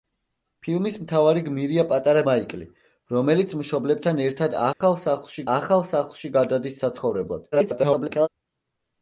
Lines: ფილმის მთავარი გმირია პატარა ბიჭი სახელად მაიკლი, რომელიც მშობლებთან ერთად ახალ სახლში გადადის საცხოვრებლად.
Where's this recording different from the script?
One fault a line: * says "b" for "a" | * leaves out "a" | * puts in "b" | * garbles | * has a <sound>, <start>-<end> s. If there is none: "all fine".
* leaves out "ბიჭი სახელად"
* has a dropout, 4.7-4.8 s
* puts in "ახალ სახლში"
* garbles